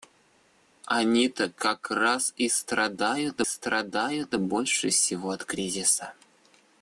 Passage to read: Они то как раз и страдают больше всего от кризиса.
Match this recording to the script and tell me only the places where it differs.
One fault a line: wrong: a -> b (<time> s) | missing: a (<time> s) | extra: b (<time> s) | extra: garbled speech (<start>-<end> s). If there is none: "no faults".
extra: страдают (3.4 s)